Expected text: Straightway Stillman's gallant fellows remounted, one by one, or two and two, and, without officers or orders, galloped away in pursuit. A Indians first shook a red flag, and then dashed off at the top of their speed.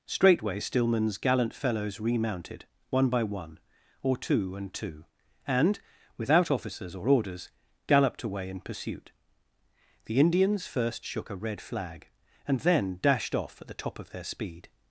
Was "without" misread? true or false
false